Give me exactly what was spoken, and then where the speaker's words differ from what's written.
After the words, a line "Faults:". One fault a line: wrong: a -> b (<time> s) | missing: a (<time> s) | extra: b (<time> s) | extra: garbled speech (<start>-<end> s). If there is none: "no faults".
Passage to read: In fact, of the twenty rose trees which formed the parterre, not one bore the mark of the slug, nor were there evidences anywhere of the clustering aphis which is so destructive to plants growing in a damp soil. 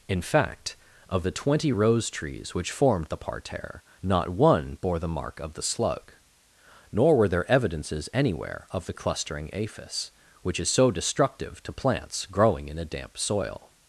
In fact, of the twenty rose trees which formed the parterre, not one bore the mark of the slug, nor were there evidences anywhere of the clustering aphis which is so destructive to plants growing in a damp soil.
Faults:
no faults